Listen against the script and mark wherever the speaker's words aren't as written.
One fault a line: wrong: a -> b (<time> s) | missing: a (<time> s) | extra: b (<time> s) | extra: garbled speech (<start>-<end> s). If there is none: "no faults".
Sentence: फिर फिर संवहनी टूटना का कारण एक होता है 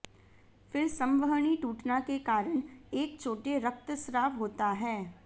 missing: फिर (0.9 s)
wrong: का -> के (2.0 s)
extra: छोटे रक्तस्राव (3.2 s)